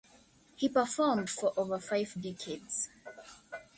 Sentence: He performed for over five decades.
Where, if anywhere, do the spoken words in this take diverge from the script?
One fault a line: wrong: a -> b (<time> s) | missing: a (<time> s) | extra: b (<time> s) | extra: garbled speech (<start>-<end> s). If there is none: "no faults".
no faults